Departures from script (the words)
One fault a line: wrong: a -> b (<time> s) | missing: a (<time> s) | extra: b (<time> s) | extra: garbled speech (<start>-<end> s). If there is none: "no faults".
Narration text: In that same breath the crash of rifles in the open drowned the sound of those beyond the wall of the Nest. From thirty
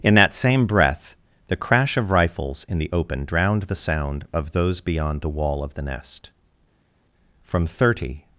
no faults